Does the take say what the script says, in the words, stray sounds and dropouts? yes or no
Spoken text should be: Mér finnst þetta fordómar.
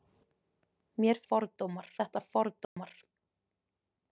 no